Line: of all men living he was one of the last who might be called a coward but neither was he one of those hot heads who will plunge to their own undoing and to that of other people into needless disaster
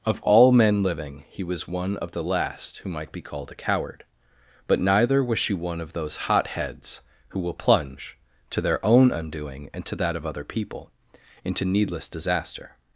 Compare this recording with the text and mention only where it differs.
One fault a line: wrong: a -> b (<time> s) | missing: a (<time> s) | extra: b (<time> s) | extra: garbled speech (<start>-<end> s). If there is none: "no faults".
wrong: he -> she (5.4 s)